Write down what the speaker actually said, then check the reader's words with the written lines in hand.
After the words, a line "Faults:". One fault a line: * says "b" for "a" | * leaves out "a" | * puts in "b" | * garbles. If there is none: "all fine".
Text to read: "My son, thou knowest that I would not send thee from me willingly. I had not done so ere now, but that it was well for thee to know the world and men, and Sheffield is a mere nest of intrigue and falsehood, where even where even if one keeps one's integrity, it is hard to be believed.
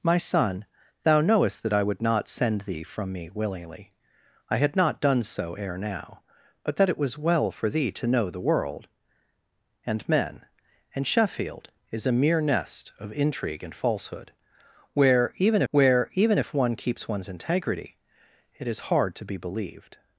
"My son, thou knowest that I would not send thee from me willingly. I had not done so ere now, but that it was well for thee to know the world and men, and Sheffield is a mere nest of intrigue and falsehood, where even where even if one keeps one's integrity, it is hard to be believed.
Faults:
all fine